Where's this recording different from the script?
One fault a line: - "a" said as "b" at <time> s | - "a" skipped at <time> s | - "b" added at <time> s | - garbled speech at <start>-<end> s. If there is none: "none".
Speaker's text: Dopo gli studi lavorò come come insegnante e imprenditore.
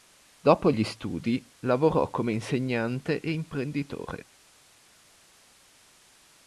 - "come" skipped at 2.3 s